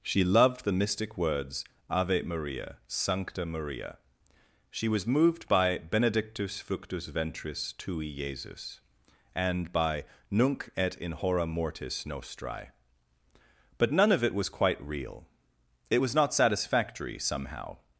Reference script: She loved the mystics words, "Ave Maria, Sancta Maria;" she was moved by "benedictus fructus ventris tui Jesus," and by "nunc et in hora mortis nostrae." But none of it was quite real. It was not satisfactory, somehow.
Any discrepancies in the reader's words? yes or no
yes